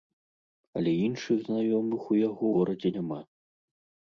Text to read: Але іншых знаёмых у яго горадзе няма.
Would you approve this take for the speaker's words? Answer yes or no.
yes